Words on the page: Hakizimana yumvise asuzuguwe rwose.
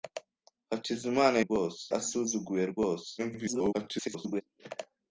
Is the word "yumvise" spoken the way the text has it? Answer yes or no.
no